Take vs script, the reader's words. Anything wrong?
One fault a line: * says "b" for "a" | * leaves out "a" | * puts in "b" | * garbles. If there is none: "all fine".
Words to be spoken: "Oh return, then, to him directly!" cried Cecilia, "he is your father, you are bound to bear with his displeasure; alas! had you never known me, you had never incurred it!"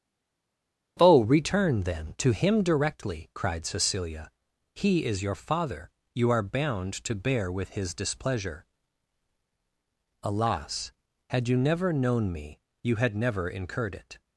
all fine